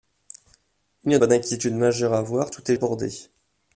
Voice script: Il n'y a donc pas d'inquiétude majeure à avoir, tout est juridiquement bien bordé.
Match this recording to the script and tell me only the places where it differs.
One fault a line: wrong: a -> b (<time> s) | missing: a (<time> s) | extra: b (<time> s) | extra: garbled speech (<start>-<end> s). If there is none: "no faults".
missing: donc (1.2 s)
missing: juridiquement bien (2.8 s)